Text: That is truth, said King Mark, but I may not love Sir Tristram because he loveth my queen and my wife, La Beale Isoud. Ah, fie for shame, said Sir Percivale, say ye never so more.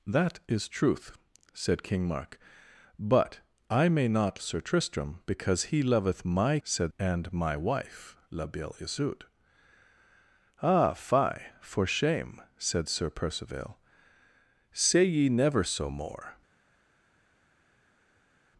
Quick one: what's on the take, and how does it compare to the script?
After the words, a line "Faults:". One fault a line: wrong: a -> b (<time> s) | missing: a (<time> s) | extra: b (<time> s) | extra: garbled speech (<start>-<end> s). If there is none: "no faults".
That is truth, said King Mark, but I may not Sir Tristram because he loveth my said and my wife, La Beale Isoud. Ah, fie for shame, said Sir Percivale, say ye never so more.
Faults:
missing: love (4.4 s)
wrong: queen -> said (6.6 s)